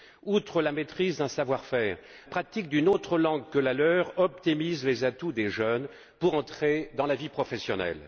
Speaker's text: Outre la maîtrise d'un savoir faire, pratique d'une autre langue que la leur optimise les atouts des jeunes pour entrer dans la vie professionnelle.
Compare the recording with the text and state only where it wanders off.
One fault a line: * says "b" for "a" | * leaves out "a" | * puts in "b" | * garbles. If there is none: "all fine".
all fine